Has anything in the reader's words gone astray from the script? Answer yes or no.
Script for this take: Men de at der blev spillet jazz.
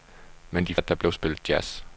no